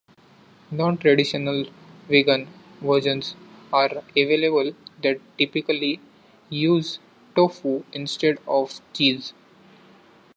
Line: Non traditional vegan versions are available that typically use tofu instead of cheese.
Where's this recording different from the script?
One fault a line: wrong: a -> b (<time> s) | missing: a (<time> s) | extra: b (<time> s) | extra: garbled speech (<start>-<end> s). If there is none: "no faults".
no faults